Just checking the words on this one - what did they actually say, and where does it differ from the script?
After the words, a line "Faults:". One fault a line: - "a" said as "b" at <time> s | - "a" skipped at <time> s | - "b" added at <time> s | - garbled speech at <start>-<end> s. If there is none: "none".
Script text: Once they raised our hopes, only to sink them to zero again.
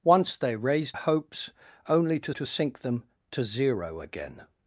Once they raised hopes, only to to sink them to zero again.
Faults:
- "our" skipped at 1.0 s
- "to" added at 2.3 s